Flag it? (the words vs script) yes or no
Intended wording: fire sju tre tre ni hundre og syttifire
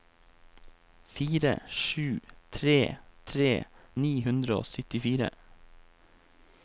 no